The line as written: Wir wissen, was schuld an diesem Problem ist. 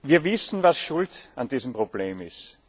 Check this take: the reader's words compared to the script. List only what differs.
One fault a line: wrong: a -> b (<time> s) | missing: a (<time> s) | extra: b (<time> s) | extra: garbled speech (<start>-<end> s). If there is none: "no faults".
no faults